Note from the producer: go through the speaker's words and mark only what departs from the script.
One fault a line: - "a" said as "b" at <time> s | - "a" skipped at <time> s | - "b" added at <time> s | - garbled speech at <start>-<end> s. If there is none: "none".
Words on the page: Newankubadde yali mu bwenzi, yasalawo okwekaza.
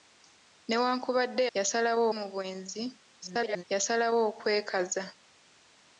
- "yali" said as "yasalawo" at 1.6 s
- garbled speech at 3.2-3.6 s